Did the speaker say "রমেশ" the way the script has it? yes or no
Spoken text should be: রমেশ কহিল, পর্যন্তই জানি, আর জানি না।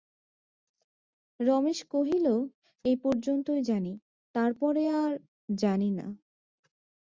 yes